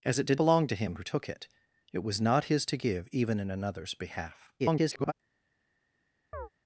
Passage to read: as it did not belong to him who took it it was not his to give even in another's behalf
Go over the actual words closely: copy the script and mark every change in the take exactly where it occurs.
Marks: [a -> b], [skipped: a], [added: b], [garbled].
as it did [skipped: not] belong to him who took it it was not his to give even in another's behalf [garbled]